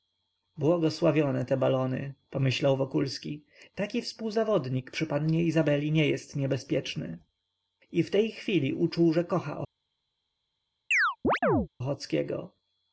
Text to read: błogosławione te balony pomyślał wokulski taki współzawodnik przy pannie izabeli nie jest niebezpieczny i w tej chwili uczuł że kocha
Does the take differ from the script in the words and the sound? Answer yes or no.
yes